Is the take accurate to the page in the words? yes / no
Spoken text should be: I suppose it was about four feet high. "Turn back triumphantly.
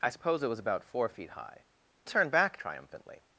yes